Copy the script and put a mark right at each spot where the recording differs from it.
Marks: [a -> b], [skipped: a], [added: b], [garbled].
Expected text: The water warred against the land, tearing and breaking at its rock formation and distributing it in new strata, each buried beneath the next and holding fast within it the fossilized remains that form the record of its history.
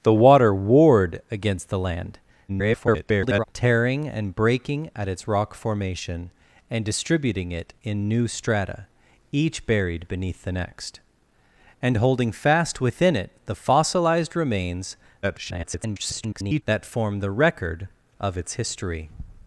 The water warred against the land, [garbled] tearing and breaking at its rock formation and distributing it in new strata, each buried beneath the next and holding fast within it the fossilized remains [garbled] that form the record of its history.